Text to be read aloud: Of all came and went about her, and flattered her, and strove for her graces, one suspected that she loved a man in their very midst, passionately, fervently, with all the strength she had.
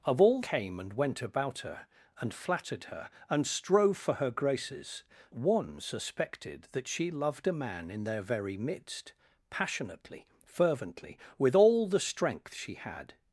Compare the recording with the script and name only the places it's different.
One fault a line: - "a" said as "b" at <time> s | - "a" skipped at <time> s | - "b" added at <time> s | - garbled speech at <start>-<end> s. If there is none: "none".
none